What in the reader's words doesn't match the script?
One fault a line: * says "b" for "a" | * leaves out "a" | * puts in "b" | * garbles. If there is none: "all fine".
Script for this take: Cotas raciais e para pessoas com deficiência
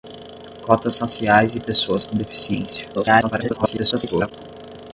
* leaves out "para"
* garbles